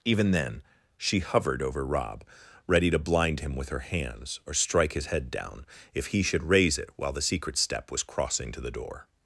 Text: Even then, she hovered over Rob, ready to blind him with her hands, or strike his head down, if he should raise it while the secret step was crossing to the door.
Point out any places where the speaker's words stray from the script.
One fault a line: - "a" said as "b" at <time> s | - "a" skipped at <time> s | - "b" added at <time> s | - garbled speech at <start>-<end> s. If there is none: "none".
none